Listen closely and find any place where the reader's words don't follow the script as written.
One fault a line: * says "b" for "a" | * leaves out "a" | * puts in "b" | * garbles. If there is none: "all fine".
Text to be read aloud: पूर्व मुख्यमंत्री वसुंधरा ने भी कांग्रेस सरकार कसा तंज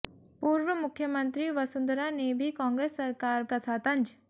all fine